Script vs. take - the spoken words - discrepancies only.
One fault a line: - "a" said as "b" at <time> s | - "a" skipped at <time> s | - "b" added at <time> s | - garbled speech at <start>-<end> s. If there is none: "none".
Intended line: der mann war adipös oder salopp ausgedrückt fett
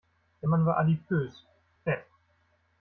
- "oder salopp ausgedrückt" skipped at 1.4 s